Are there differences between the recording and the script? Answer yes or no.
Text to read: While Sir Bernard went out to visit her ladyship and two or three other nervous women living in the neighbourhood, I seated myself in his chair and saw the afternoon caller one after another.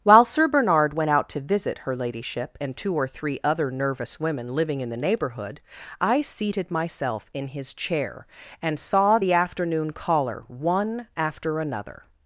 no